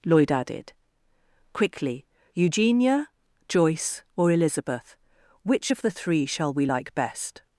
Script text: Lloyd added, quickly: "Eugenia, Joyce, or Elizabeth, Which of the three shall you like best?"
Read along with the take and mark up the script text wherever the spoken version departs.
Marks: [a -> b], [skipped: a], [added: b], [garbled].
Lloyd added, quickly: "Eugenia, Joyce, or Elizabeth, Which of the three shall [you -> we] like best?"